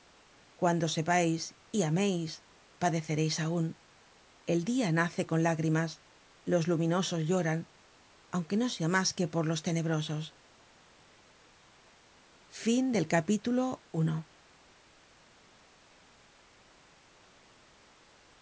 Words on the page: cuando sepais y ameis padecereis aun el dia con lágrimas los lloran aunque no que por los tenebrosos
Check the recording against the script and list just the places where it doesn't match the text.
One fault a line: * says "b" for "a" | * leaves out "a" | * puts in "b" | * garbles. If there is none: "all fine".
* puts in "nace"
* puts in "luminosos"
* puts in "sea mas"